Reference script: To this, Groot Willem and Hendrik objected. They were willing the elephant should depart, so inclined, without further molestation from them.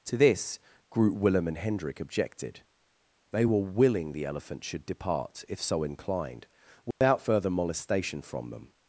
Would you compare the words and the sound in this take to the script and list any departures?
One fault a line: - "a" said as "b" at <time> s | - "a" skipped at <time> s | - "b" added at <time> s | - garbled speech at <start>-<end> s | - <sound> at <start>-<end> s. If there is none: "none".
- "if" added at 5.5 s
- dropout at 6.9-7.0 s